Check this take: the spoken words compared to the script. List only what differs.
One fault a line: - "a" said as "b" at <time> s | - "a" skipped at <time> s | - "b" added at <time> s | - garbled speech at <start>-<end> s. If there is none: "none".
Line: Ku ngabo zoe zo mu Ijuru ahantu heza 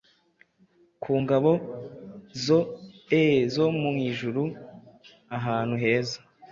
none